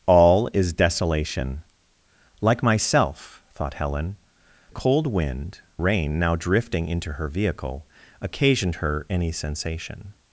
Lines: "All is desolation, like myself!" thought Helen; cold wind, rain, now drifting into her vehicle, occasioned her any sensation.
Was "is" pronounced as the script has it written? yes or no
yes